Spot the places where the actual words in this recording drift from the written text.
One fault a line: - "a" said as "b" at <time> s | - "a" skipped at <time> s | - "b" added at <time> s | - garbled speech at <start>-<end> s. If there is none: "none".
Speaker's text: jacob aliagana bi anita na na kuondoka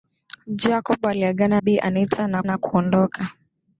none